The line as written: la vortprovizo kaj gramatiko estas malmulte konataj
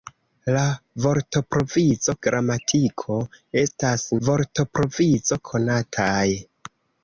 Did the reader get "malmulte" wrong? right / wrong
wrong